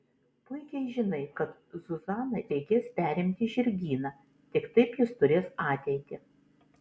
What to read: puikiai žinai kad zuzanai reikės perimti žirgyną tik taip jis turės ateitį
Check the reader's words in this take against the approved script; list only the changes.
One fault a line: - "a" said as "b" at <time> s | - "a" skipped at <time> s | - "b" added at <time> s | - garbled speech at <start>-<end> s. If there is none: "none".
none